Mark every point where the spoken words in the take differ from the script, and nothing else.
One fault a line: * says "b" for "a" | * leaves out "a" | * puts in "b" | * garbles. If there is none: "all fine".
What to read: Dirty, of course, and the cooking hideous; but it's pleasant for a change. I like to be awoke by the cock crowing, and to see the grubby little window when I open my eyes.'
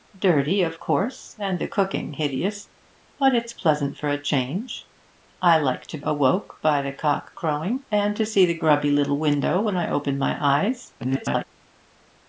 * leaves out "be"
* garbles